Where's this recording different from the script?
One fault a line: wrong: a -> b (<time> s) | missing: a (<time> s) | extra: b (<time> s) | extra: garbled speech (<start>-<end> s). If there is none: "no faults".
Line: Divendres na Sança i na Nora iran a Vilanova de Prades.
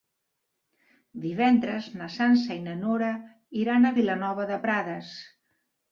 no faults